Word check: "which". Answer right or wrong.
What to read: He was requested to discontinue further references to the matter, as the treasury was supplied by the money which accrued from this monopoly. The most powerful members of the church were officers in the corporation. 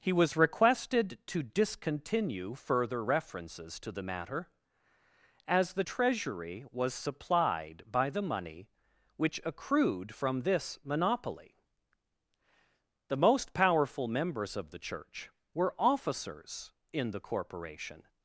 right